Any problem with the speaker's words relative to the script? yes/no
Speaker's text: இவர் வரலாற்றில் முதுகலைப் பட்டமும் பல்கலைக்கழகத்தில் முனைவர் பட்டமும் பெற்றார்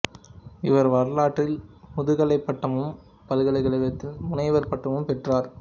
no